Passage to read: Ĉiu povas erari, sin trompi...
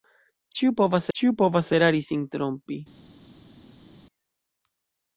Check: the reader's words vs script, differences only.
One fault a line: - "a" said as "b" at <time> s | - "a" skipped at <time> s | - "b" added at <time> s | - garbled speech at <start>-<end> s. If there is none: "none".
- "ĉiu povas" added at 1.2 s